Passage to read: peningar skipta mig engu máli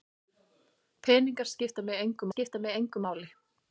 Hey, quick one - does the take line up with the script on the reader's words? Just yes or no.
no